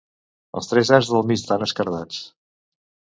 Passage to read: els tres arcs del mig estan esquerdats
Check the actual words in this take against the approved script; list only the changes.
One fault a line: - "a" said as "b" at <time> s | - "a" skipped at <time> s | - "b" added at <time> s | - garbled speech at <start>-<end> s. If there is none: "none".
none